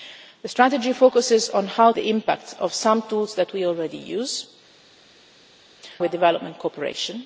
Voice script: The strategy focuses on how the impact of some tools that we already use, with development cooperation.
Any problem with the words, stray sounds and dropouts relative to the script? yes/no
no